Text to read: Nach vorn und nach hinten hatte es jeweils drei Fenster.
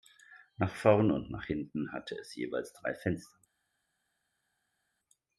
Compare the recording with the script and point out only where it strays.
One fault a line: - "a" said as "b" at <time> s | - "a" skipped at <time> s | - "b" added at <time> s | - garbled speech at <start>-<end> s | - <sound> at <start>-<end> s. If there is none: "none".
none